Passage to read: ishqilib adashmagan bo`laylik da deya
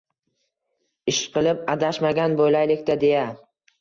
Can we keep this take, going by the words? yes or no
yes